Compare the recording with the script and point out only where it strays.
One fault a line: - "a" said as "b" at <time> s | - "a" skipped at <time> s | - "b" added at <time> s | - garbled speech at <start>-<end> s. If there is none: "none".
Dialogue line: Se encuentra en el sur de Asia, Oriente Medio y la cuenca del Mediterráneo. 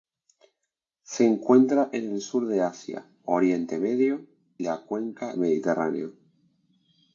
- "y" skipped at 4.2 s
- "del" skipped at 5.4 s